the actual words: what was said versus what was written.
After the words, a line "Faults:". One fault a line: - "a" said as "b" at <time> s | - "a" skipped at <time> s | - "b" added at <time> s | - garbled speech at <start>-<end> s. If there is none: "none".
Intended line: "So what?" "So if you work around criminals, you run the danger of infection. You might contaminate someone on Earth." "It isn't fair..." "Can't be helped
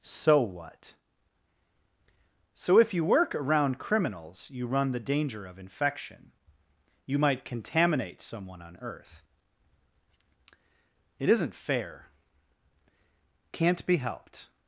"So what?" "So if you work around criminals, you run the danger of infection. You might contaminate someone on Earth." "It isn't fair..." "Can't be helped
Faults:
none